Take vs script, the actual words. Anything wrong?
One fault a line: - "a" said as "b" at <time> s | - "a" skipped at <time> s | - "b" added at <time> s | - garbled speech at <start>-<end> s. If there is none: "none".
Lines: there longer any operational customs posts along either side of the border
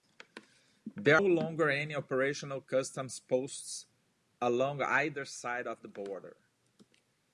none